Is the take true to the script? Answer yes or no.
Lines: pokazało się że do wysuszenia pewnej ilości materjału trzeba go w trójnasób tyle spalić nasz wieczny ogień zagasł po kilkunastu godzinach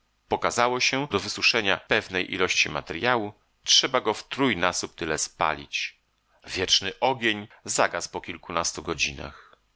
no